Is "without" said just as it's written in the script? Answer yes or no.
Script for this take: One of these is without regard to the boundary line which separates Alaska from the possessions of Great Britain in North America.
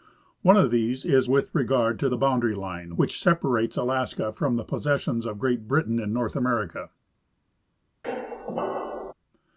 no